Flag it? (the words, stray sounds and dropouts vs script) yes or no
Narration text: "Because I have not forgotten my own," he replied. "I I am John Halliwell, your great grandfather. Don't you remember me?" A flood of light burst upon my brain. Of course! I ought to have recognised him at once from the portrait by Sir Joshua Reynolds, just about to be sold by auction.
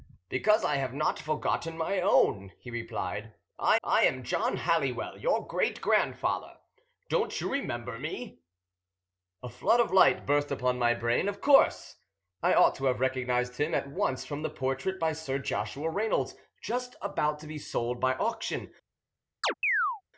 yes